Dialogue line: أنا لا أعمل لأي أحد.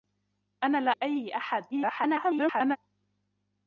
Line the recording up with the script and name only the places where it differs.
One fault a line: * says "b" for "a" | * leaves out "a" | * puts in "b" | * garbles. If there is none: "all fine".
* leaves out "أعمل"
* garbles